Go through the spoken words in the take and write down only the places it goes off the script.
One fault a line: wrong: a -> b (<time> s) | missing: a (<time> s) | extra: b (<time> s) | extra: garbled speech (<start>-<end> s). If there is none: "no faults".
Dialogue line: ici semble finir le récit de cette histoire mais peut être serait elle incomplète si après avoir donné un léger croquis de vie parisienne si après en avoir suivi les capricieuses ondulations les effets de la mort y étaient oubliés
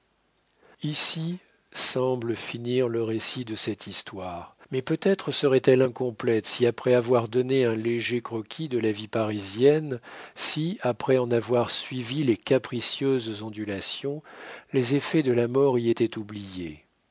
extra: la (8.8 s)